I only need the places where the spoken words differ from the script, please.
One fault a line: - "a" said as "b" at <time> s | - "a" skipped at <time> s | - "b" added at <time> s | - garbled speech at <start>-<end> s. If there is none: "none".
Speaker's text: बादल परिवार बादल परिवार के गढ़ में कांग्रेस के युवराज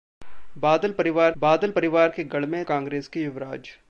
none